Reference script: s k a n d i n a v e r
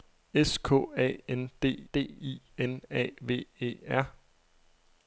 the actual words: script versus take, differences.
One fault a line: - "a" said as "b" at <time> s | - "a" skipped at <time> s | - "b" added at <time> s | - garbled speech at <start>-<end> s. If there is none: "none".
- "d" added at 1.9 s